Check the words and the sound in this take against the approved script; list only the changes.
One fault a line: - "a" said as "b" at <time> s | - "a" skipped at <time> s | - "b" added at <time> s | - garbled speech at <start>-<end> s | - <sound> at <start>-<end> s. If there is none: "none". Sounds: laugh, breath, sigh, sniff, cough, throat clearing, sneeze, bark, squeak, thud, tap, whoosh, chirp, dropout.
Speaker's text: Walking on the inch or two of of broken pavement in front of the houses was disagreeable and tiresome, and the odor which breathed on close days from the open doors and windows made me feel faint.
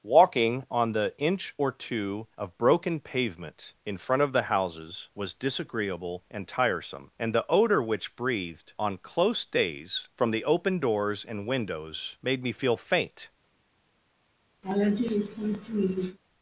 - "of" skipped at 2.6 s
- laugh at 14.6-16.2 s